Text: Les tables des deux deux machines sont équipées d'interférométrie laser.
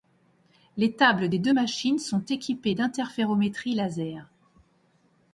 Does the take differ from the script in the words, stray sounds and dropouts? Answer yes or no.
yes